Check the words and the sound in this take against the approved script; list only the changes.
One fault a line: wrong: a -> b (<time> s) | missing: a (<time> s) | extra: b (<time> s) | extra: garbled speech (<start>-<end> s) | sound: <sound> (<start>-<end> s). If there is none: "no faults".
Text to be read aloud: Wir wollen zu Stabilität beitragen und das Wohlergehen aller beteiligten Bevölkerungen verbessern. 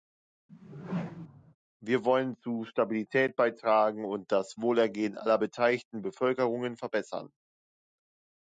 sound: whoosh (0.5-1.6 s)